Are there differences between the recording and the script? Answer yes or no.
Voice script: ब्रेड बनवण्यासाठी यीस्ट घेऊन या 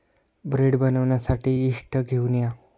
no